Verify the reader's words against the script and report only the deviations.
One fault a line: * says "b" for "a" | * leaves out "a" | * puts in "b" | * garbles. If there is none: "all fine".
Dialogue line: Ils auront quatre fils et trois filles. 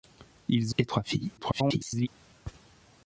* leaves out "auront quatre fils"
* garbles